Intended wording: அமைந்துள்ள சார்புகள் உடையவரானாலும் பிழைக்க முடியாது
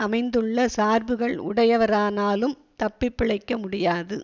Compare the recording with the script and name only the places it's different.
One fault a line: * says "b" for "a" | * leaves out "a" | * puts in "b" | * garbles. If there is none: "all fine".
* puts in "தப்பி"